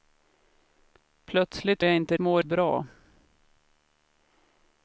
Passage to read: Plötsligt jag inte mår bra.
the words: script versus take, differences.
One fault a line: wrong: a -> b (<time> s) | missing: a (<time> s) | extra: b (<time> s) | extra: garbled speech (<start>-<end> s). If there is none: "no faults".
no faults